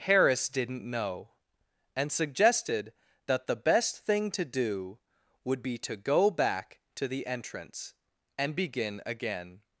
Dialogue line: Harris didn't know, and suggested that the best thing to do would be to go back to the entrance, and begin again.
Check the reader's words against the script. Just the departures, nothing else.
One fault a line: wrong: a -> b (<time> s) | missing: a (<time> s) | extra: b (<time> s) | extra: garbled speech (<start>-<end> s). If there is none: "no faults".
no faults